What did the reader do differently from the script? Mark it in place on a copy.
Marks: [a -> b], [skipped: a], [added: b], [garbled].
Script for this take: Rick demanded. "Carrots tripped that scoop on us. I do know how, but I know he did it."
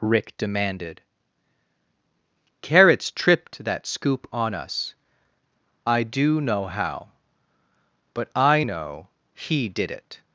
Rick demanded. "Carrots tripped that scoop on us. I do know how, but I know he did it."